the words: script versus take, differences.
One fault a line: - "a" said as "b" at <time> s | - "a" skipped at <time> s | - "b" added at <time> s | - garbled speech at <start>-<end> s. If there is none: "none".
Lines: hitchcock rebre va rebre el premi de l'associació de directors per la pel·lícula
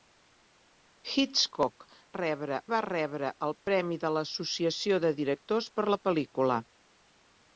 none